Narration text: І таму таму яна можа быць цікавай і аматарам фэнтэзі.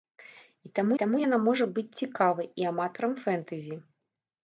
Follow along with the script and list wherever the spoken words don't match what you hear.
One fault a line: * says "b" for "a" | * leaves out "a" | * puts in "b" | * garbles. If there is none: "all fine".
all fine